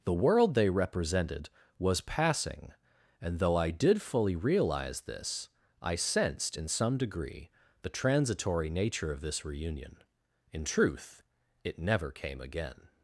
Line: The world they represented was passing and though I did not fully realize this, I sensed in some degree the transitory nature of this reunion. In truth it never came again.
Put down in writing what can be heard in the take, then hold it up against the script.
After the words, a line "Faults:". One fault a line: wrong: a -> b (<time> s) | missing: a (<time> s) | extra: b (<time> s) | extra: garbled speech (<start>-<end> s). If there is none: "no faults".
The world they represented was passing and though I did fully realize this, I sensed in some degree the transitory nature of this reunion. In truth it never came again.
Faults:
missing: not (4.0 s)